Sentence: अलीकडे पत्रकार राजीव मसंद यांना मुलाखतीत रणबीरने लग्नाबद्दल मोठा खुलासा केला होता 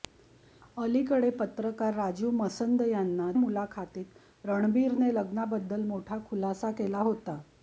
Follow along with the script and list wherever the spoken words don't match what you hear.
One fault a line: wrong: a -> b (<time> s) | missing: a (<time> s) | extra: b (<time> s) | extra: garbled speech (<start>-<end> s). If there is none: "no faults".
no faults